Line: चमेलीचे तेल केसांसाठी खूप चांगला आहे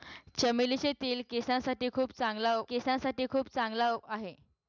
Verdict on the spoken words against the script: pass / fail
fail